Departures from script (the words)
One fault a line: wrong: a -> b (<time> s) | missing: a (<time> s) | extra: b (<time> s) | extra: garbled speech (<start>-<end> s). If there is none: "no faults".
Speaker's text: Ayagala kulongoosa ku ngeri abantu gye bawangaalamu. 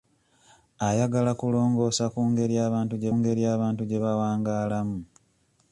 extra: ngeri abantu gye (3.2 s)